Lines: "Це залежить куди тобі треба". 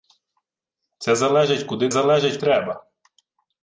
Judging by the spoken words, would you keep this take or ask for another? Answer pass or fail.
fail